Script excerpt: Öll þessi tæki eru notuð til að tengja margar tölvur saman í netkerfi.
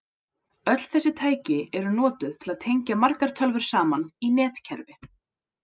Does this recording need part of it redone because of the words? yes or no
no